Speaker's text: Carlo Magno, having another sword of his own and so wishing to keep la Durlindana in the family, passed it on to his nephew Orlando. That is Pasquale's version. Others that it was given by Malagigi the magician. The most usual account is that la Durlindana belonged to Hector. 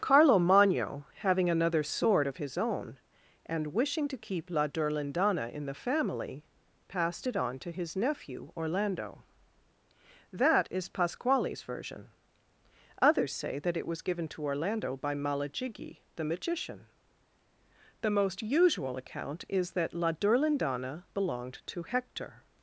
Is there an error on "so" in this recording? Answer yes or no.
yes